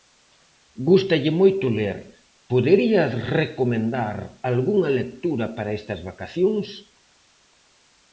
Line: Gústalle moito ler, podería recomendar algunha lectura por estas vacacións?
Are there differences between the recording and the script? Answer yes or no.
yes